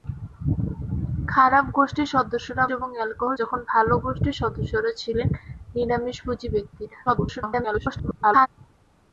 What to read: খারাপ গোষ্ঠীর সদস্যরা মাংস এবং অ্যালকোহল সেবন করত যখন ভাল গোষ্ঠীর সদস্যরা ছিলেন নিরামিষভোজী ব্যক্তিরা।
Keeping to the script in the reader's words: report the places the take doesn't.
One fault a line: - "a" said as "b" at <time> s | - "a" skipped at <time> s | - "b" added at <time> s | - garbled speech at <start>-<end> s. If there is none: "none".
- "মাংস" skipped at 2.6 s
- "সেবন করত" skipped at 3.4 s
- garbled speech at 7.1-8.5 s